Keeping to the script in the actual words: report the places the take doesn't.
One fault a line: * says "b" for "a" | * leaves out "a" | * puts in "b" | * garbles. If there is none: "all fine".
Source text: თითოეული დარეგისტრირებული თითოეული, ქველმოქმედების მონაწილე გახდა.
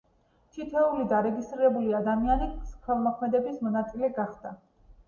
* says "ადამიანი" for "თითოეული"